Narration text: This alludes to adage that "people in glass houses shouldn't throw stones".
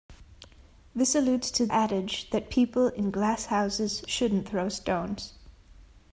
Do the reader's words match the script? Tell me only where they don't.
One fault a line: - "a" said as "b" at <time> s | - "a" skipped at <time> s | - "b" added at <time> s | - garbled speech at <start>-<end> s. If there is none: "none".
none